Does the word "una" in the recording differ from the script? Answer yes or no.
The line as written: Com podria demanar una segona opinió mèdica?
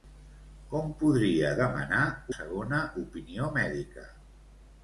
yes